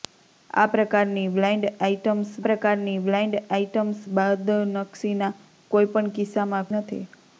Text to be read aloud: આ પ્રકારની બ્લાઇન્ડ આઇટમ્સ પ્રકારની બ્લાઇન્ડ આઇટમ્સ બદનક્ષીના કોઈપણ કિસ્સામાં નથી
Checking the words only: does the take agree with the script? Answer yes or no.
yes